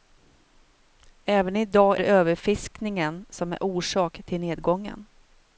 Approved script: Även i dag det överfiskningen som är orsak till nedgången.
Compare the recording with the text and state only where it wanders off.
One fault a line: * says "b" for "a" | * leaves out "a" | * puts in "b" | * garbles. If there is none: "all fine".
all fine